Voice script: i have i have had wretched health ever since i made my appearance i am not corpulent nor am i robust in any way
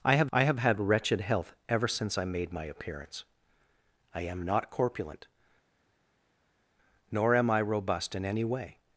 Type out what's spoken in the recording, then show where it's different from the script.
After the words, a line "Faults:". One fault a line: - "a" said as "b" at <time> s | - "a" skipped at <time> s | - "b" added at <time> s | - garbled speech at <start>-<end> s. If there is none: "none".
i have i have had wretched health ever since i made my appearance i am not corpulent nor am i robust in any way
Faults:
none